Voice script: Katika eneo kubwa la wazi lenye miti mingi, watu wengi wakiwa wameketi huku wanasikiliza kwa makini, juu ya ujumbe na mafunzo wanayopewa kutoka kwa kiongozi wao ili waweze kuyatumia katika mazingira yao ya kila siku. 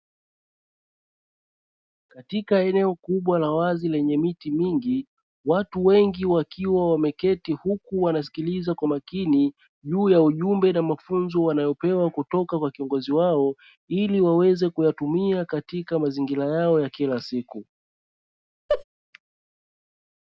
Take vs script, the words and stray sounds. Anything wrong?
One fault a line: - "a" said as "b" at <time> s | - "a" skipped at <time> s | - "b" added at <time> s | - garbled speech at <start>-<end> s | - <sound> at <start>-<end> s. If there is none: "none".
- laugh at 18.7-18.8 s